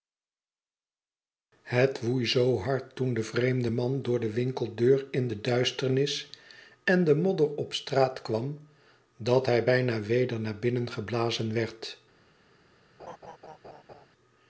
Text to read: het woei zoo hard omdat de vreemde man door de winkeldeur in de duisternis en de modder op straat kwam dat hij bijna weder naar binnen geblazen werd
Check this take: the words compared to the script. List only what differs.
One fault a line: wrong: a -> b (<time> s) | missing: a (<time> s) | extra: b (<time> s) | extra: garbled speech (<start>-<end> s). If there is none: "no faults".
wrong: omdat -> toen (3.0 s)